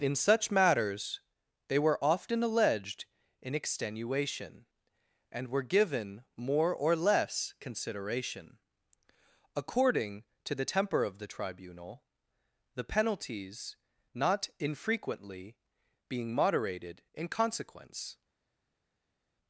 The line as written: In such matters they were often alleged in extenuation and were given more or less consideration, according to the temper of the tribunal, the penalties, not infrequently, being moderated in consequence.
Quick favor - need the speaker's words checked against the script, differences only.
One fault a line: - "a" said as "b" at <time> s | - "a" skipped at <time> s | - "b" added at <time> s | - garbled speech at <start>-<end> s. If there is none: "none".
none